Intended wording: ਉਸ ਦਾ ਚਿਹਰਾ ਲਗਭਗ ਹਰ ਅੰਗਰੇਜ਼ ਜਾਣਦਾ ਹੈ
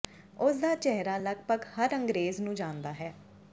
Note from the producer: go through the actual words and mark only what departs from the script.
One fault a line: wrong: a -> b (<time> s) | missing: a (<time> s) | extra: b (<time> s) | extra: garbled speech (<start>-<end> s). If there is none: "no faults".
extra: ਨੂੰ (2.4 s)